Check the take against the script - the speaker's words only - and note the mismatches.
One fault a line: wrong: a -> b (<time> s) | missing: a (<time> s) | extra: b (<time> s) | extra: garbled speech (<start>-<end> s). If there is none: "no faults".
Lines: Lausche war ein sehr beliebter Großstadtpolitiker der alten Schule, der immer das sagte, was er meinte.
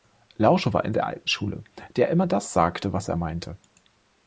missing: sehr beliebter Großstadtpolitiker (0.9 s)